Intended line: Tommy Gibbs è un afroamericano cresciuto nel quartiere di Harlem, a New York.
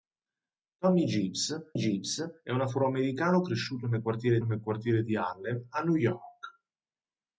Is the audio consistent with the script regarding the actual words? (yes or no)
no